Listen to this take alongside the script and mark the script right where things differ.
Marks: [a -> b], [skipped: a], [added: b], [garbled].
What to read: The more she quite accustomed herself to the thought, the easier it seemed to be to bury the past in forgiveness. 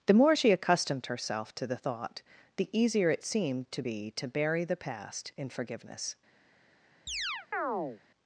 The more she [skipped: quite] accustomed herself to the thought, the easier it seemed to be to bury the past in forgiveness.